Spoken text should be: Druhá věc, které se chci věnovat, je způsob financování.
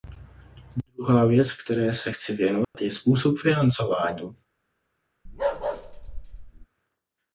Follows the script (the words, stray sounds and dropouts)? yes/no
no